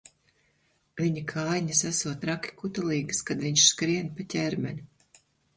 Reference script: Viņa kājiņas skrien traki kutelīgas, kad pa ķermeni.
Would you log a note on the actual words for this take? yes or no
yes